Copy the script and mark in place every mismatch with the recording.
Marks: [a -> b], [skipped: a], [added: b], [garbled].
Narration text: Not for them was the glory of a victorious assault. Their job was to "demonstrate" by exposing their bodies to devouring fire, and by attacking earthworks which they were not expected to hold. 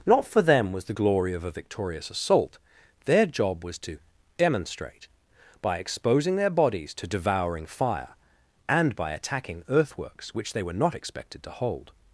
Not for them was the glory of a victorious assault. Their job was to "demonstrate" by exposing their bodies to devouring fire, and by attacking earthworks which they were not expected to hold.